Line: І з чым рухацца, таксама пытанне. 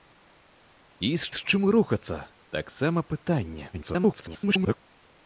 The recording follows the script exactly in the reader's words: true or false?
false